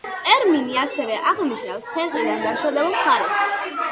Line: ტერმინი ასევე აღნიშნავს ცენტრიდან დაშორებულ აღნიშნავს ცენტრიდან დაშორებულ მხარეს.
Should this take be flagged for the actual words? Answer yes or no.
yes